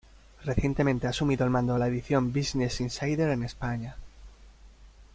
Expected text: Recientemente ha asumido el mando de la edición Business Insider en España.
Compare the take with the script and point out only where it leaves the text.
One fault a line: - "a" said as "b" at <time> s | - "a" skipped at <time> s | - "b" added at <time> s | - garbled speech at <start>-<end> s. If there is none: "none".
none